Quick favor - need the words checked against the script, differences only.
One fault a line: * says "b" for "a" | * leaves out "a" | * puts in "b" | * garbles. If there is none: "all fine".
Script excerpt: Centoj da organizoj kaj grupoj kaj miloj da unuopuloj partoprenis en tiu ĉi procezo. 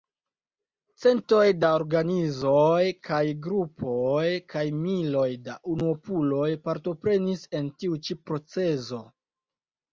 all fine